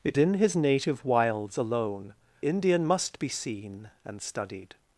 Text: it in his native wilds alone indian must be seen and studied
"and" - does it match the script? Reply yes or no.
yes